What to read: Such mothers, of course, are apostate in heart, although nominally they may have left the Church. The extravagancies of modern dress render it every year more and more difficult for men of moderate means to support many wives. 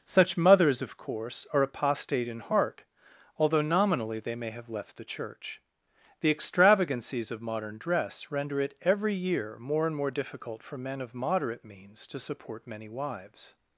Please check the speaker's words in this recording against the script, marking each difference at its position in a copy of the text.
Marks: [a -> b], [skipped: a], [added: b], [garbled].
Such mothers, of course, are apostate in heart, although nominally they may have left the Church. The extravagancies of modern dress render it every year more and more difficult for men of moderate means to support many wives.